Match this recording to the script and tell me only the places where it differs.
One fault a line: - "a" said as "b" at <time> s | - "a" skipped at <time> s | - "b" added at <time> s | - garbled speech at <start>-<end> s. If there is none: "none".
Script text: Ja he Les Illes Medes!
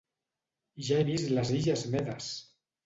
- "vist" added at 1.1 s